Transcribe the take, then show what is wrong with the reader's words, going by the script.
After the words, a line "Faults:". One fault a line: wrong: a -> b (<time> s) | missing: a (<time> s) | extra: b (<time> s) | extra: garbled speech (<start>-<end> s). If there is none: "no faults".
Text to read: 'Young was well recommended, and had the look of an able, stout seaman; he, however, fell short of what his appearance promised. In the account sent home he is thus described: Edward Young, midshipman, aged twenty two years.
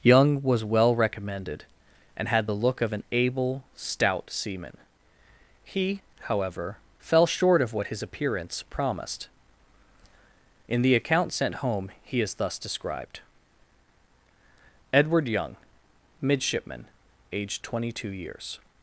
'Young was well recommended, and had the look of an able, stout seaman; he, however, fell short of what his appearance promised. In the account sent home he is thus described: Edward Young, midshipman, aged twenty two years.
Faults:
no faults